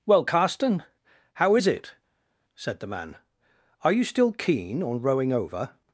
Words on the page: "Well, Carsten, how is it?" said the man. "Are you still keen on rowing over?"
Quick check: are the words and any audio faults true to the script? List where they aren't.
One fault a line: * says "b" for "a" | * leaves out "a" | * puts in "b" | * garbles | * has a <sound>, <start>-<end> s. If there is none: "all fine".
all fine